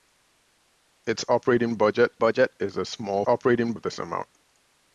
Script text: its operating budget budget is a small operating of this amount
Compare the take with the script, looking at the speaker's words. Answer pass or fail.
pass